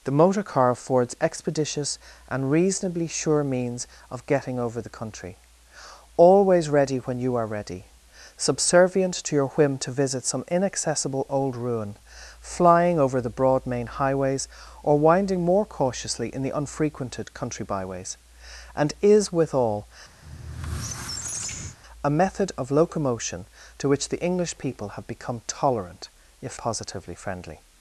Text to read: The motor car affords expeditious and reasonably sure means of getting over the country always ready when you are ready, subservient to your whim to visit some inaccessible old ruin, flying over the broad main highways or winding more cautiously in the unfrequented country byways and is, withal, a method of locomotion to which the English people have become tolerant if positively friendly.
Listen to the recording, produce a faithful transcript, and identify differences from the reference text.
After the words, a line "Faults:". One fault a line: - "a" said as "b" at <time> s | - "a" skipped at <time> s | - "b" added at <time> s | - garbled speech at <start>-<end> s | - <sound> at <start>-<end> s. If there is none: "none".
The motor car affords expeditious and reasonably sure means of getting over the country always ready when you are ready, subservient to your whim to visit some inaccessible old ruin, flying over the broad main highways or winding more cautiously in the unfrequented country byways and is, withal, a method of locomotion to which the English people have become tolerant if positively friendly.
Faults:
- squeak at 20.2-21.8 s